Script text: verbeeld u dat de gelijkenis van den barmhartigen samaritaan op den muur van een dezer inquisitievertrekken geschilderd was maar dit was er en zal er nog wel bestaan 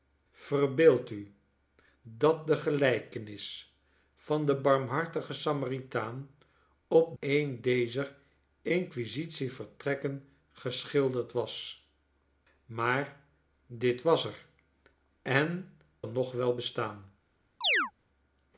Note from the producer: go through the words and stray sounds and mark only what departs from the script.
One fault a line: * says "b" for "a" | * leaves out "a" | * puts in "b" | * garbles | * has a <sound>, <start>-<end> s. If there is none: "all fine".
* leaves out "den muur van"
* leaves out "zal"
* has a chirp, 17.6-17.9 s